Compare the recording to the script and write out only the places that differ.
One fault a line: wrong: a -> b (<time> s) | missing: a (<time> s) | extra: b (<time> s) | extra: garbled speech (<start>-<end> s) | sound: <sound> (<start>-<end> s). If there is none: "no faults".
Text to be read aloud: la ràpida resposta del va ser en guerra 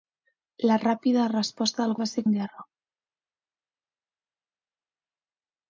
no faults